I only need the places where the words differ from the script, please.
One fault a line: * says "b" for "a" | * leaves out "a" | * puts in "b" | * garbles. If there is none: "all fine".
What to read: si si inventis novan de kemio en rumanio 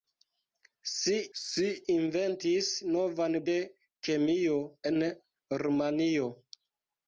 all fine